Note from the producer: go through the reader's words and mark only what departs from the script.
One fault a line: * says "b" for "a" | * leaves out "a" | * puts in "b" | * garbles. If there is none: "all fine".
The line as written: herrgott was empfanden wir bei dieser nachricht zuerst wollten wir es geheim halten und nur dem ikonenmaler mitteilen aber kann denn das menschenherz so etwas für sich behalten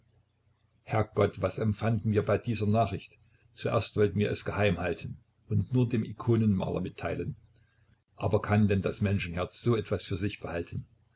all fine